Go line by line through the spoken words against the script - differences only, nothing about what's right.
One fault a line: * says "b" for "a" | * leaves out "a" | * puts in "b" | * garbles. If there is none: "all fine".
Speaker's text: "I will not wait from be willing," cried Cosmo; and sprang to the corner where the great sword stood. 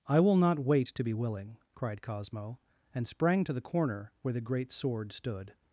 * says "to" for "from"